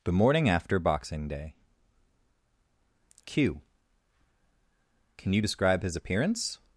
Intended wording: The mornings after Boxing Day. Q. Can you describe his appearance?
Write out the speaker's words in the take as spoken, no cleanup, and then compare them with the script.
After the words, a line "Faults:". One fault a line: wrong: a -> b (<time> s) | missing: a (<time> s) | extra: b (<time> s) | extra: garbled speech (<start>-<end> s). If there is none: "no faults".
The morning after Boxing Day. Q. Can you describe his appearance?
Faults:
wrong: mornings -> morning (0.1 s)